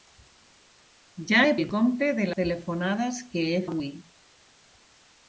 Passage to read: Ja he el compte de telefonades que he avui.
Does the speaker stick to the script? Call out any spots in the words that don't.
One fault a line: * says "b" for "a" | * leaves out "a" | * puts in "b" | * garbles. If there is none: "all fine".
all fine